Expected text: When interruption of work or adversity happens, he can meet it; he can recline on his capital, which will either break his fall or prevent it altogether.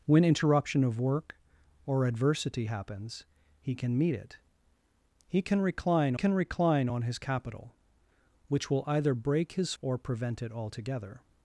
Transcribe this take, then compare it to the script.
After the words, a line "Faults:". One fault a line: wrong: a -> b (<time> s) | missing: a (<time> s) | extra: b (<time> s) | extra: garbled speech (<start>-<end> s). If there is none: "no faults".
When interruption of work or adversity happens, he can meet it; he can recline can recline on his capital, which will either break his or prevent it altogether.
Faults:
extra: can recline (6.1 s)
missing: fall (9.7 s)